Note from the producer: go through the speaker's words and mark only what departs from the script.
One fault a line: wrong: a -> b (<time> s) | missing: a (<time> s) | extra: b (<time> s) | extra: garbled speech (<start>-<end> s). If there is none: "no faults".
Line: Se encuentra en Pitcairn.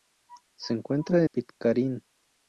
missing: en (1.3 s)